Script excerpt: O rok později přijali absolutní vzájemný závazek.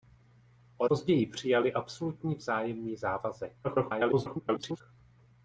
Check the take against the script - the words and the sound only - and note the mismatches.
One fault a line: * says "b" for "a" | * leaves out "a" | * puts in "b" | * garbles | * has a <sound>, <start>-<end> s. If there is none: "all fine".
* leaves out "rok"
* garbles